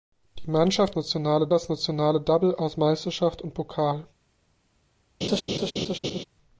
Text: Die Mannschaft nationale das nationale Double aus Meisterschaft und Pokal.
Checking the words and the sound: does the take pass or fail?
fail